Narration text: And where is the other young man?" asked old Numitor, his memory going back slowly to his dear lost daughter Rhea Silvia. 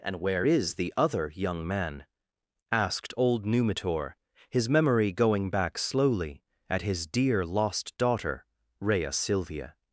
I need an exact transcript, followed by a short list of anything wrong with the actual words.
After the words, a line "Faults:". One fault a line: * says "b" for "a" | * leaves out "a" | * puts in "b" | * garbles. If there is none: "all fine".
And where is the other young man?" asked old Numitor, his memory going back slowly at his dear lost daughter Rhea Silvia.
Faults:
* says "at" for "to"